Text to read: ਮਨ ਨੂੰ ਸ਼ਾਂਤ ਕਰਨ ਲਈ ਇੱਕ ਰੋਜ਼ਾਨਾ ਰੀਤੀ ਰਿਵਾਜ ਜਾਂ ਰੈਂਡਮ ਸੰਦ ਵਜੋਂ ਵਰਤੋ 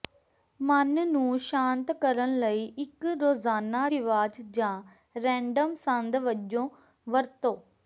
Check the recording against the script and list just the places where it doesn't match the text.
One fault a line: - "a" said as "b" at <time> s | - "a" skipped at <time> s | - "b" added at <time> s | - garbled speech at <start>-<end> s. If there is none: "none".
- "ਰੀਤੀ" skipped at 3.9 s